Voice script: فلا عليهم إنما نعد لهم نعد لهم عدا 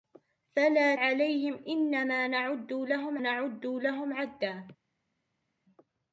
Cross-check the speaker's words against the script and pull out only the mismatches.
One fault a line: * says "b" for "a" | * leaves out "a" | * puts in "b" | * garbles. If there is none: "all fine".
all fine